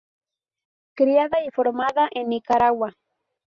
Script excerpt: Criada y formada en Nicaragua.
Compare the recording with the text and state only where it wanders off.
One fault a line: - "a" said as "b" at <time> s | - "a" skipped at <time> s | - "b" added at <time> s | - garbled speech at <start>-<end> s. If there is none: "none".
none